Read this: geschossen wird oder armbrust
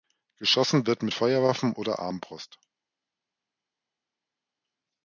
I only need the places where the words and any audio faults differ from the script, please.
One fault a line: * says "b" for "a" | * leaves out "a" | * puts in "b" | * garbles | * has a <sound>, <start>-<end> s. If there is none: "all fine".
* puts in "mit feuerwaffen"